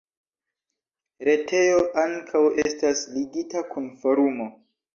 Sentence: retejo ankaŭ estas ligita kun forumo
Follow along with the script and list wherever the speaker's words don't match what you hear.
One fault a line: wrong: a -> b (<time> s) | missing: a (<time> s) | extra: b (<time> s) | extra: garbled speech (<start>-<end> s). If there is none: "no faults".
no faults